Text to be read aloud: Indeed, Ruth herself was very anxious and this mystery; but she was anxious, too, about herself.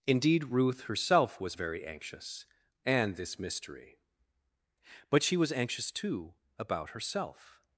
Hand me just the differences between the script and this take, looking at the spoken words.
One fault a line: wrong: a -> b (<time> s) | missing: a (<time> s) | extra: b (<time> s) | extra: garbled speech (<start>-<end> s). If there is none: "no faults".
no faults